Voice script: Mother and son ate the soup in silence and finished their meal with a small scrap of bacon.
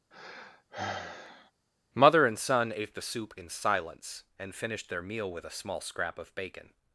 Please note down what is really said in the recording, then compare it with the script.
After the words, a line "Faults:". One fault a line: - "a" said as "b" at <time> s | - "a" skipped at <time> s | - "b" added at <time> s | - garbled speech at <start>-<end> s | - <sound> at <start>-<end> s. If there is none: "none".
Mother and son ate the soup in silence and finished their meal with a small scrap of bacon.
Faults:
- sigh at 0.1-1.5 s